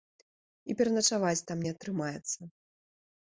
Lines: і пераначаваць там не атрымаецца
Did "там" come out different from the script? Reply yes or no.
no